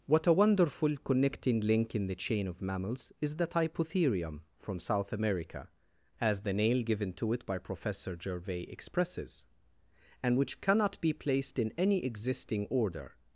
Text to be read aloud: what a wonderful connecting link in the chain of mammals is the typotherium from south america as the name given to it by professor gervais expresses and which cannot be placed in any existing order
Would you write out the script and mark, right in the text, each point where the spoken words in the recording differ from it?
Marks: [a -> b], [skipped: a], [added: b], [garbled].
what a wonderful connecting link in the chain of mammals is the typotherium from south america as the [name -> nail] given to it by professor gervais expresses and which cannot be placed in any existing order